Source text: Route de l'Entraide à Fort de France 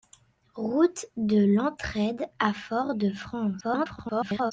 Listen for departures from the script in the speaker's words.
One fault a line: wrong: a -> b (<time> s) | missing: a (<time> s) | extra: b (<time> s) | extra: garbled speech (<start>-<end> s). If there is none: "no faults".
extra: garbled speech (3.6-4.5 s)